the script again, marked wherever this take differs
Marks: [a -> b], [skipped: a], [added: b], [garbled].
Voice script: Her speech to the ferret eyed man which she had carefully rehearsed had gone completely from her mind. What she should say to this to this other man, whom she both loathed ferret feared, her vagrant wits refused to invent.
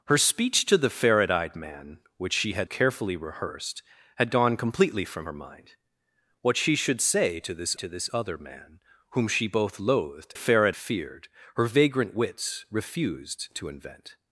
Her speech to the ferret eyed man which she had carefully rehearsed had gone completely from her mind. What she should say to this to this other man, whom she both loathed ferret feared, her vagrant wits refused to invent.